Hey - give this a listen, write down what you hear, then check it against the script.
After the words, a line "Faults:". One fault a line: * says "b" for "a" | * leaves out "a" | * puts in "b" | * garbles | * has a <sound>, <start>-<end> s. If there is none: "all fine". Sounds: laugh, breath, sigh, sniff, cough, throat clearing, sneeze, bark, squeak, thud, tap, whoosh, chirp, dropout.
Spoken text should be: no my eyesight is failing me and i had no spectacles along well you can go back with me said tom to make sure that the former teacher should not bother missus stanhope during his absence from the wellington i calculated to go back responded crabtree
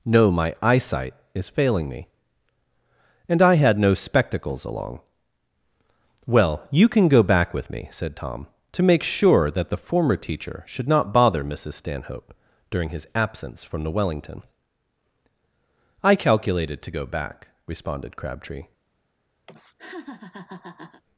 no my eyesight is failing me and i had no spectacles along well you can go back with me said tom to make sure that the former teacher should not bother missus stanhope during his absence from the wellington i calculated to go back responded crabtree
Faults:
* has a laugh, 19.5-21.0 s